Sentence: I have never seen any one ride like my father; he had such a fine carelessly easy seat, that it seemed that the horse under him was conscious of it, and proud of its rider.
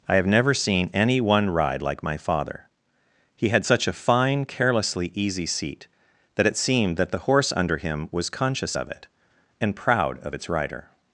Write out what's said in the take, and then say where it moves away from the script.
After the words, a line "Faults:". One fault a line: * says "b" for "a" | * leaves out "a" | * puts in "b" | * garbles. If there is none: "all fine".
I have never seen any one ride like my father; he had such a fine carelessly easy seat, that it seemed that the horse under him was conscious of it, and proud of its rider.
Faults:
all fine